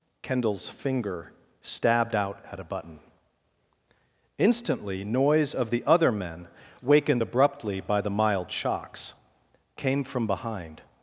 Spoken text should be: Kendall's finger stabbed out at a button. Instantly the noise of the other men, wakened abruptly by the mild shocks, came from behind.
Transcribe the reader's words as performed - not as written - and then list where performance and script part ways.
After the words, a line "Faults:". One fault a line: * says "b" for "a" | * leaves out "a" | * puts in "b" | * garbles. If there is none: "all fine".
Kendall's finger stabbed out at a button. Instantly noise of the other men, wakened abruptly by the mild shocks, came from behind.
Faults:
* leaves out "the"